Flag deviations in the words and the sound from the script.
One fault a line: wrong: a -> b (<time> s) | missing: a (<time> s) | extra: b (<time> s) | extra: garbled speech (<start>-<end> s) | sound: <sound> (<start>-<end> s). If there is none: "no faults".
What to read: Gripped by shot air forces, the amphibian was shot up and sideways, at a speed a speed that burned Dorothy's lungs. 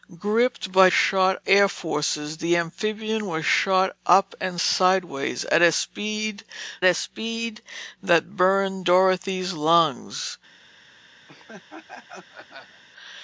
sound: laugh (11.3-12.8 s)